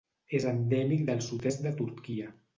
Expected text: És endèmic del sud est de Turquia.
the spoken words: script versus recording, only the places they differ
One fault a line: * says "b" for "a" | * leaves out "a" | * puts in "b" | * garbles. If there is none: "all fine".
all fine